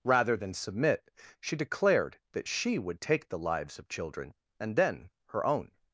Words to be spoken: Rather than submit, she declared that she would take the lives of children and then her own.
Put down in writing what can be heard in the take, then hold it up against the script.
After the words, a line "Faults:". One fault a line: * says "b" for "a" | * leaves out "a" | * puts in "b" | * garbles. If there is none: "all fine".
Rather than submit, she declared that she would take the lives of children and then her own.
Faults:
all fine